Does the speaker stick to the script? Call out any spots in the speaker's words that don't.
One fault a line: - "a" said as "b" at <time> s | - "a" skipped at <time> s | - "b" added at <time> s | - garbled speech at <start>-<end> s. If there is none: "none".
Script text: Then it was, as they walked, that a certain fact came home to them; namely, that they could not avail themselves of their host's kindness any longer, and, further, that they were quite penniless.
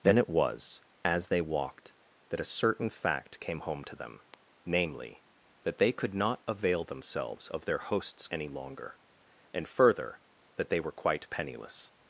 - "kindness" skipped at 8.3 s